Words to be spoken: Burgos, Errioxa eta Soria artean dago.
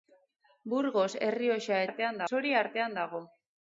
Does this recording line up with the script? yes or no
no